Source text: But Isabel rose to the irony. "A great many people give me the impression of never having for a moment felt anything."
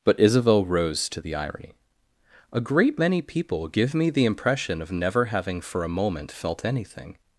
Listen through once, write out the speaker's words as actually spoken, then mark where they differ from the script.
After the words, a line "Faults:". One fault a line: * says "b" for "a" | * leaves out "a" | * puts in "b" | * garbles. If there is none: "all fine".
But Isabel rose to the irony. "A great many people give me the impression of never having for a moment felt anything."
Faults:
all fine